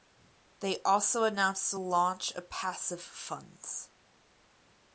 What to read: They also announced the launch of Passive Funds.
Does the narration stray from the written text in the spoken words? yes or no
no